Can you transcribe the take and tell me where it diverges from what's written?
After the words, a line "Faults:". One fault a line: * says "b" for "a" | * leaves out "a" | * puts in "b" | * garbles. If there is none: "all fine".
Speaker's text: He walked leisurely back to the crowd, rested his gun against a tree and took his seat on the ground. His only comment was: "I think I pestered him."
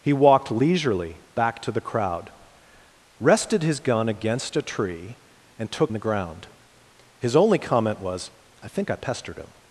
He walked leisurely back to the crowd, rested his gun against a tree and took the ground. His only comment was: "I think I pestered him."
Faults:
* leaves out "his seat on"